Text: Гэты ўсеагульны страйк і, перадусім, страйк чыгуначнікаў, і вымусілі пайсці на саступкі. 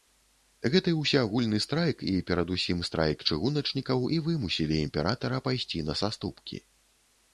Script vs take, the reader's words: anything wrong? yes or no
yes